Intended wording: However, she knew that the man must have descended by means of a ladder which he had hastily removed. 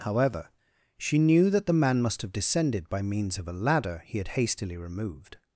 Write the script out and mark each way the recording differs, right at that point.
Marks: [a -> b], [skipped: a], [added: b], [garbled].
However, she knew that the man must have descended by means of a ladder [skipped: which] he had hastily removed.